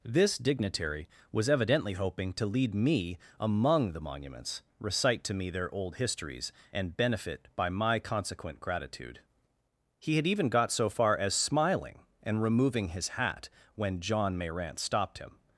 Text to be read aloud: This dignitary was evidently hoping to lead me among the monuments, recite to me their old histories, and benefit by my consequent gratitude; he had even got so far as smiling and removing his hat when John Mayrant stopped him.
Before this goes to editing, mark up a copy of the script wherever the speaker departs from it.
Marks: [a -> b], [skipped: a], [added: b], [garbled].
This dignitary was evidently hoping to lead me among the monuments, recite to me their old histories, and benefit by my consequent gratitude; he had even got so far as smiling and removing his hat when John Mayrant stopped him.